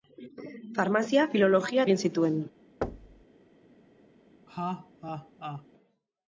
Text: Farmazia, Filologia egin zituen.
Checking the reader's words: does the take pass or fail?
pass